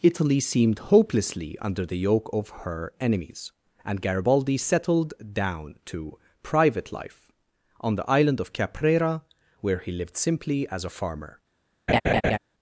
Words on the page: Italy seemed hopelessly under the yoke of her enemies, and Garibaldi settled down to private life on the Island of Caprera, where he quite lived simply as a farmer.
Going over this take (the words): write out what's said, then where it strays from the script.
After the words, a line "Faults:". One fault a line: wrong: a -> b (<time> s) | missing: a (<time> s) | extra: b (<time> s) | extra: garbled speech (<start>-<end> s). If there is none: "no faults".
Italy seemed hopelessly under the yoke of her enemies, and Garibaldi settled down to private life on the Island of Caprera, where he lived simply as a farmer.
Faults:
missing: quite (9.9 s)